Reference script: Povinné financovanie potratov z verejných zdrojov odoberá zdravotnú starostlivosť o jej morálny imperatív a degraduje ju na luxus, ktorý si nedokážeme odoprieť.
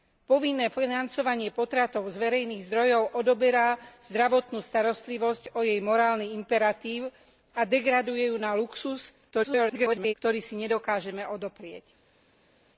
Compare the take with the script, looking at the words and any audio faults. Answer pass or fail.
fail